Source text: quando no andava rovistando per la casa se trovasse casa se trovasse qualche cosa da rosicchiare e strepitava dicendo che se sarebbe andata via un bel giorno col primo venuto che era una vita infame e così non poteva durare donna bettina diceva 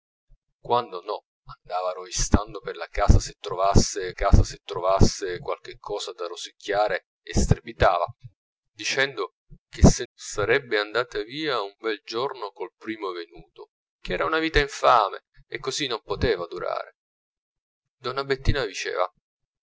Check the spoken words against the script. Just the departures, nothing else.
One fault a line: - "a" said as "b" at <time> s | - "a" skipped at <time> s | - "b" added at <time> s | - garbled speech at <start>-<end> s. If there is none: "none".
none